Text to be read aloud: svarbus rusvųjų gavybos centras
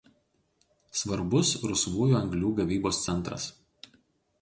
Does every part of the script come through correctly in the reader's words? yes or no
no